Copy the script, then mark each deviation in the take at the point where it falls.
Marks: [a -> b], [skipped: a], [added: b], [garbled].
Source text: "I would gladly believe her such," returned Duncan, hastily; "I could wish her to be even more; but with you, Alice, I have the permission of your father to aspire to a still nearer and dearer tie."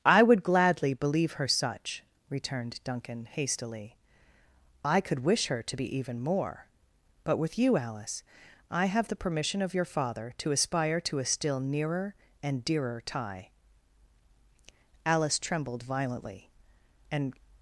"I would gladly believe her such," returned Duncan, hastily; "I could wish her to be even more; but with you, Alice, I have the permission of your father to aspire to a still nearer and dearer tie." [added: Alice trembled violently and]